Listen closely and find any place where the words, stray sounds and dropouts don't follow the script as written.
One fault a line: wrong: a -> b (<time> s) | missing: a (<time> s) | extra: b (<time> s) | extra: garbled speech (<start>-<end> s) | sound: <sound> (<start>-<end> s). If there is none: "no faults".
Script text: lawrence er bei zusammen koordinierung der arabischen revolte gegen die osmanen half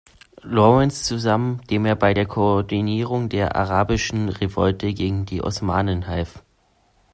extra: zusammen dem (1.0 s)
wrong: zusammen -> der (2.1 s)